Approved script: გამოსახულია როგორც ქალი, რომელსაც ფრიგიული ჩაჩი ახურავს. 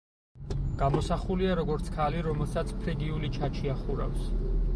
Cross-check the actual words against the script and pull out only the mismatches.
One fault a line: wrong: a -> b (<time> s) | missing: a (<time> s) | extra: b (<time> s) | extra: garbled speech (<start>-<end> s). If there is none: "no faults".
no faults